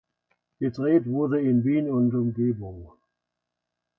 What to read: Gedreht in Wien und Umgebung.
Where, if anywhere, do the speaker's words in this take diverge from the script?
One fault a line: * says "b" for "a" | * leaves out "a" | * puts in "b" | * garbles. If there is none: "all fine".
* puts in "wurde"